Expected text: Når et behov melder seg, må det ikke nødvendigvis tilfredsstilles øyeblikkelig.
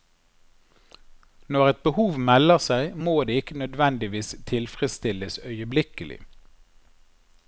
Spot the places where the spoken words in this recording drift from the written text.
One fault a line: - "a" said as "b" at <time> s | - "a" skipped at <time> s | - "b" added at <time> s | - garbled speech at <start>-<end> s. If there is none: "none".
none